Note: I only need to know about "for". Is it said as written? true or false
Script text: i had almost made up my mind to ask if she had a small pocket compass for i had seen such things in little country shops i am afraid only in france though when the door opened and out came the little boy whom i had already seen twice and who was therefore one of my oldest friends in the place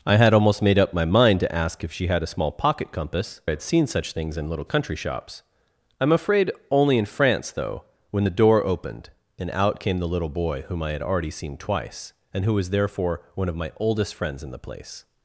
false